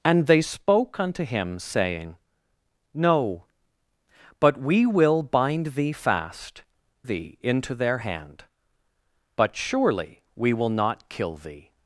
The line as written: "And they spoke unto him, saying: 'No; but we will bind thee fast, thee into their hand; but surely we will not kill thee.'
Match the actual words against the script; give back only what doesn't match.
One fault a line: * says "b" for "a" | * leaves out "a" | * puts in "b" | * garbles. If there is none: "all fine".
all fine